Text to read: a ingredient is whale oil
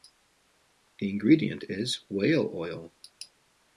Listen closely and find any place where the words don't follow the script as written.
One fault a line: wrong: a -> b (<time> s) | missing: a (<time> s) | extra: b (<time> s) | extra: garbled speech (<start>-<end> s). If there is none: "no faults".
wrong: a -> the (1.0 s)